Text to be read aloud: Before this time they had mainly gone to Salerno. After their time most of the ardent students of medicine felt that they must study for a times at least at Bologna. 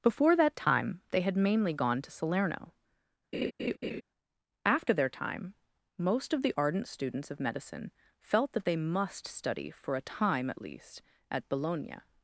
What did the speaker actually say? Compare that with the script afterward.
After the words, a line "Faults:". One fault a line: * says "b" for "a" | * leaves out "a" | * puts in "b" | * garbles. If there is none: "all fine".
Before that time they had mainly gone to Salerno. After their time most of the ardent students of medicine felt that they must study for a time at least at Bologna.
Faults:
* says "that" for "this"
* says "time" for "times"